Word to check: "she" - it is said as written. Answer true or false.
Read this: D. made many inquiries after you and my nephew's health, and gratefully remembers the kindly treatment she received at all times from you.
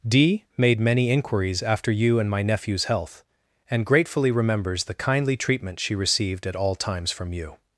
true